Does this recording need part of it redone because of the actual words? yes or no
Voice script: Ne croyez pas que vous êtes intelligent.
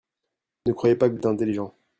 yes